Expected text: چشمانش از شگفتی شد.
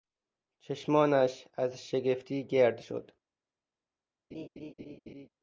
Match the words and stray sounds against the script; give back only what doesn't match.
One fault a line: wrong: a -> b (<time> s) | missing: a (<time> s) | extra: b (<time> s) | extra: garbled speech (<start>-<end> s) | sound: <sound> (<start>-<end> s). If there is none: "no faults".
extra: گرد (2.5 s)
sound: laugh (4.3-5.3 s)